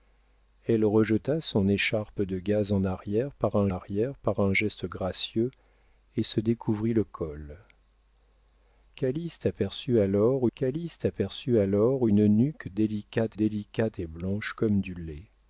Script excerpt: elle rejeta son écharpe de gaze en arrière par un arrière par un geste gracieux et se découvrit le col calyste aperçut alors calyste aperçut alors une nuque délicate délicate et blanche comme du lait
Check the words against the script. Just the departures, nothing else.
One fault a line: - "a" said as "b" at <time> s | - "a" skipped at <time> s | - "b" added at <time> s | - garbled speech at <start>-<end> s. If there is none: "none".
none